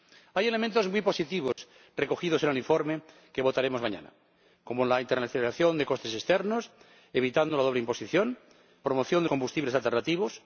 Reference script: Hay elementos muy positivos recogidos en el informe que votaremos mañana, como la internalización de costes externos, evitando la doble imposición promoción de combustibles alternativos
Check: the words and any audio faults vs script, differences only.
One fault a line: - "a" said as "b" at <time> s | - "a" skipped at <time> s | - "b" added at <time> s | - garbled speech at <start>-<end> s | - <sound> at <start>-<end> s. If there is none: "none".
- dropout at 1.5-1.6 s